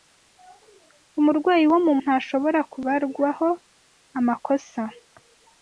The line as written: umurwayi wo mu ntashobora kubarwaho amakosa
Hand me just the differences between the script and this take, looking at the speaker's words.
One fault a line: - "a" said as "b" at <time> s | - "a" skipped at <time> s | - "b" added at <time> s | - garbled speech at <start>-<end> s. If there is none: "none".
none